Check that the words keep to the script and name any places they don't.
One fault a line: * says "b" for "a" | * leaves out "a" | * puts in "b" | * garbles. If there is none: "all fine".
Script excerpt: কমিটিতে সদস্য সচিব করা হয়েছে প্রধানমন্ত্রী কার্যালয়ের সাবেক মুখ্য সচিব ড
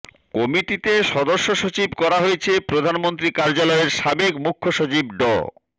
all fine